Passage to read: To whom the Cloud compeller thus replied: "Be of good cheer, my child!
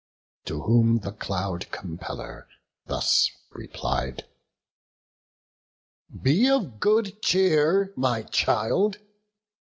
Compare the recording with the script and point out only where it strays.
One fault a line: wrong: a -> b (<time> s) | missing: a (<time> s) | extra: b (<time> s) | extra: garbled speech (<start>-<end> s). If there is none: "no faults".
no faults